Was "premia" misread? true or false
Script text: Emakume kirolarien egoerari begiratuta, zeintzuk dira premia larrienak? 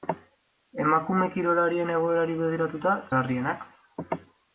true